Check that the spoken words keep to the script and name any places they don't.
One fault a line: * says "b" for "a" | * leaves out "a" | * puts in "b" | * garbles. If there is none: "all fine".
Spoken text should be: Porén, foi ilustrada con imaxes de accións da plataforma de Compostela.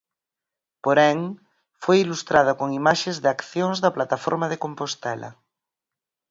all fine